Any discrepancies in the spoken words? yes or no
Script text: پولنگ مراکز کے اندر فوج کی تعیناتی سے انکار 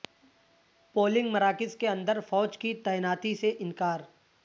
no